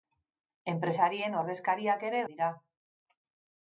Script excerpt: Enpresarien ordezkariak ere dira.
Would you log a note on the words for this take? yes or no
no